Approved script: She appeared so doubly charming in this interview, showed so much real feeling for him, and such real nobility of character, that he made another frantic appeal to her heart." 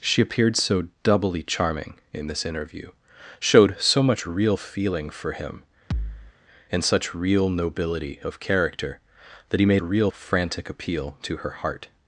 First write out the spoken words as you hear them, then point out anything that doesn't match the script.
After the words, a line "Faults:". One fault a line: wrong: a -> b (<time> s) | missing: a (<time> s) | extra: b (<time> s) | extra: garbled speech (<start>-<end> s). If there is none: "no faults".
She appeared so doubly charming in this interview, showed so much real feeling for him, and such real nobility of character, that he made real frantic appeal to her heart."
Faults:
wrong: another -> real (9.8 s)